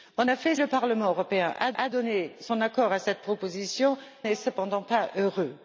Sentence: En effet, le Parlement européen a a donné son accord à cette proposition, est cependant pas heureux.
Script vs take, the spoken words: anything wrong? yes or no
no